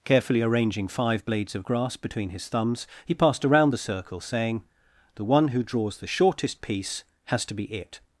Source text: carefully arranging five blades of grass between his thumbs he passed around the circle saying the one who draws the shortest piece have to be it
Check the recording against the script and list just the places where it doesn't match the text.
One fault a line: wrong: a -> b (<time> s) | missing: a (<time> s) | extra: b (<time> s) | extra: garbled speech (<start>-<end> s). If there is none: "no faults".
wrong: have -> has (7.3 s)